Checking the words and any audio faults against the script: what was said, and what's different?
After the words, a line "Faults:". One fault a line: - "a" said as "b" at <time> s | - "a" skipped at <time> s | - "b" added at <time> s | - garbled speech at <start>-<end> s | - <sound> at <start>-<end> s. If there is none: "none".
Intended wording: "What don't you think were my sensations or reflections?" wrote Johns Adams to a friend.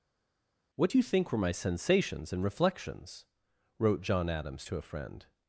"What do you think were my sensations and reflections?" wrote John Adams to a friend.
Faults:
- "don't" said as "do" at 0.9 s
- "or" said as "and" at 2.3 s
- "Johns" said as "John" at 4.0 s